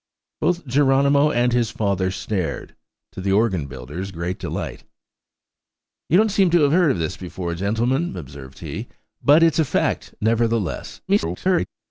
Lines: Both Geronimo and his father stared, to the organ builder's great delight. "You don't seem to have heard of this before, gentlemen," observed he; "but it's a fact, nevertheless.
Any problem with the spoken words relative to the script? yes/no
yes